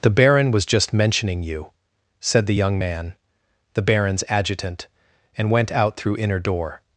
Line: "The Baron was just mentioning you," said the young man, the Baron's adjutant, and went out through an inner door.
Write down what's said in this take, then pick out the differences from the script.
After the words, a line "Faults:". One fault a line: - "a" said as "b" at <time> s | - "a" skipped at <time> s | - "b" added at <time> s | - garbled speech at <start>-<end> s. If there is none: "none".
"The Baron was just mentioning you," said the young man, the Baron's adjutant, and went out through inner door.
Faults:
- "an" skipped at 6.2 s